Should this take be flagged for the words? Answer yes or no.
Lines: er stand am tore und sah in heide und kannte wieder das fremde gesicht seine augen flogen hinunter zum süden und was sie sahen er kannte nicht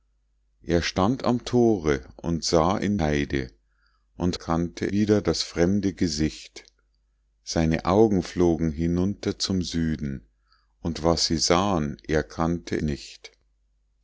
no